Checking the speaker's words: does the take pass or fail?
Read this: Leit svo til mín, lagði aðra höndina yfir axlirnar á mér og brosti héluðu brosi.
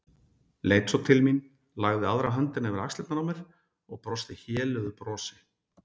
pass